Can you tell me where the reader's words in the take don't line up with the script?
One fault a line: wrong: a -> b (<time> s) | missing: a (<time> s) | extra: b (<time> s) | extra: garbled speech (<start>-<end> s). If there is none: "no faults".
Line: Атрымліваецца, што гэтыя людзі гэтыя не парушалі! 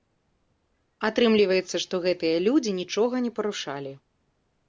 wrong: гэтыя -> нічога (2.8 s)